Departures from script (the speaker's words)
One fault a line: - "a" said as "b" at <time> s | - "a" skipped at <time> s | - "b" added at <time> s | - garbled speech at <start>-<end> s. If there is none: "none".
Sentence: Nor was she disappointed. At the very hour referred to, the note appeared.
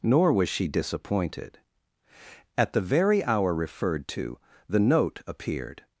none